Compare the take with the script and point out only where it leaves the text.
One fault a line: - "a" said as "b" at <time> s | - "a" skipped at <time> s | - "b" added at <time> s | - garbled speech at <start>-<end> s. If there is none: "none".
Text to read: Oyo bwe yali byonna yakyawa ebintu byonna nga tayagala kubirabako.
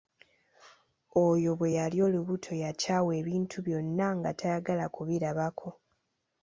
- "byonna" said as "olubuto" at 2.0 s